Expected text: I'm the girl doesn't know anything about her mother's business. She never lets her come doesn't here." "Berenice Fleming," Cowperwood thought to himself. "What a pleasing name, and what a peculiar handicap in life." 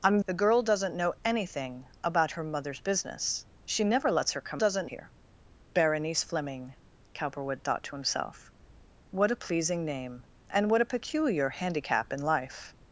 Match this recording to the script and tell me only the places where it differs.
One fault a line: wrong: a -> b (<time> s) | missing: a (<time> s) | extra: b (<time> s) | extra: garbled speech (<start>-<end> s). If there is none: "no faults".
no faults